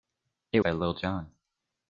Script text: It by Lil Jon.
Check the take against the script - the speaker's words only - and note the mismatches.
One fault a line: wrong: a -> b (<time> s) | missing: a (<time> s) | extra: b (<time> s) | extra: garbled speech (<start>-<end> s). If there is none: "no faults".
no faults